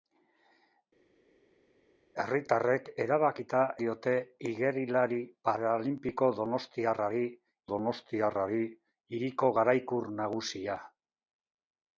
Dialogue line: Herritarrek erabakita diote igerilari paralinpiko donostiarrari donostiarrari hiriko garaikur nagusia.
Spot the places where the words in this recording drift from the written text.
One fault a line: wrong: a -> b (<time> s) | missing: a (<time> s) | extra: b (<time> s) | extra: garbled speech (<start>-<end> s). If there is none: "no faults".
no faults